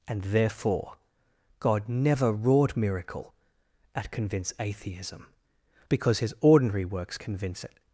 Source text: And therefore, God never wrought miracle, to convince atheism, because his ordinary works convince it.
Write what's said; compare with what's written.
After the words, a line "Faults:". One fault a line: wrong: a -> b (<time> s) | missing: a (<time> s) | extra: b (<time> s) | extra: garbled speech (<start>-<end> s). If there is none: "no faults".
And therefore, God never wrought miracle, at convince atheism, because his ordinary works convince it.
Faults:
wrong: to -> at (3.9 s)